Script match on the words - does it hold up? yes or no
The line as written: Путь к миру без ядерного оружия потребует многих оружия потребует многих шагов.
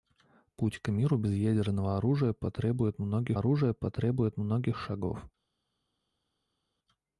yes